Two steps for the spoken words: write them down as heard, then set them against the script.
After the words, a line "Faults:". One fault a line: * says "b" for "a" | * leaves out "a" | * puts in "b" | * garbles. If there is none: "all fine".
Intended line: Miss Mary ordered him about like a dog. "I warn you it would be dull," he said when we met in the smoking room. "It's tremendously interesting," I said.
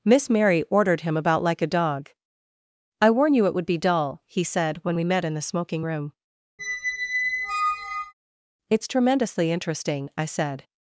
Miss Mary ordered him about like a dog. "I warn you it would be dull," he said when we met in the smoking room. "It's tremendously interesting," I said.
Faults:
all fine